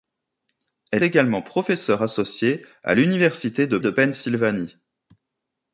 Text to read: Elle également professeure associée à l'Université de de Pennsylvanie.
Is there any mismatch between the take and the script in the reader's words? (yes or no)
no